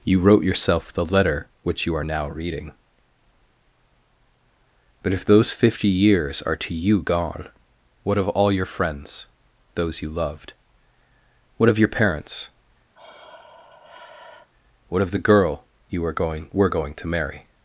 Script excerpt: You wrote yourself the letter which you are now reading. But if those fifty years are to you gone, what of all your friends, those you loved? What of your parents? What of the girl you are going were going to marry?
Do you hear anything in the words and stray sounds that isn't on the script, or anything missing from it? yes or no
yes